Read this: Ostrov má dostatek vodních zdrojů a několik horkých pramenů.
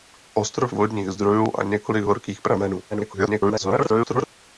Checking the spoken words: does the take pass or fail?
fail